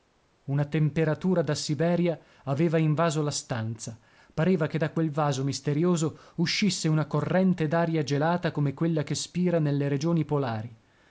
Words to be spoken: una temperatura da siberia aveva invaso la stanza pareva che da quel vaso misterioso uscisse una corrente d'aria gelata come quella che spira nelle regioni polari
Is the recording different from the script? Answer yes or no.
no